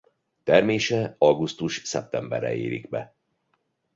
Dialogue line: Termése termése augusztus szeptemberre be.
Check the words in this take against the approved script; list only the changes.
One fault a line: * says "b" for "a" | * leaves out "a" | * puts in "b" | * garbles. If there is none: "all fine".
* leaves out "termése"
* puts in "érik"